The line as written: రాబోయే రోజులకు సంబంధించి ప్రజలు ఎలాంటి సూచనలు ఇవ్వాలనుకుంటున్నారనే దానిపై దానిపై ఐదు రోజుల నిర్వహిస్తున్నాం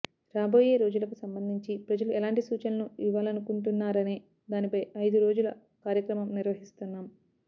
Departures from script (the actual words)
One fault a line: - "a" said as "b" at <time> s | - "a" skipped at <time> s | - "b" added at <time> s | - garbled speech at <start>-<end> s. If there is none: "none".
- "దానిపై" skipped at 4.8 s
- "కార్యక్రమం" added at 5.9 s